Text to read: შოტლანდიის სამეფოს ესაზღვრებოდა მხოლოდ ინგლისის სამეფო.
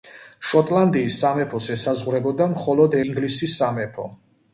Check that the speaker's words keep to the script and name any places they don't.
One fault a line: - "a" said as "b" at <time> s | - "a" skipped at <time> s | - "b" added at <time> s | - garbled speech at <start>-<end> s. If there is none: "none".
none